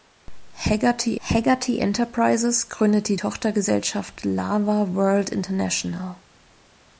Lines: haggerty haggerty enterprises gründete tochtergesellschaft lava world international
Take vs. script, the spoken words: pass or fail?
pass